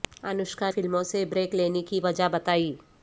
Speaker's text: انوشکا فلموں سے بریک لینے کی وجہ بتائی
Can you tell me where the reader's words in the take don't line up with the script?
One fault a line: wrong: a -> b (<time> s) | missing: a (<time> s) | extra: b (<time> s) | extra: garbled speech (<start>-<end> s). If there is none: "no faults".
no faults